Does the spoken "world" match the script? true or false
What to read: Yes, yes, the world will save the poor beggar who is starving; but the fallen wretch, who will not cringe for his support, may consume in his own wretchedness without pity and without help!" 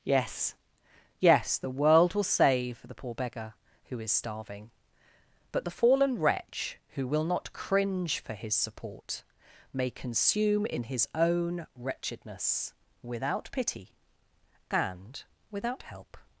true